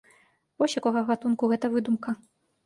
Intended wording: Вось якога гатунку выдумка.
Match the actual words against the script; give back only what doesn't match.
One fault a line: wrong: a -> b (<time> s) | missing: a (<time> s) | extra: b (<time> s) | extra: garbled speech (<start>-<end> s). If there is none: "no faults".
extra: гэта (1.5 s)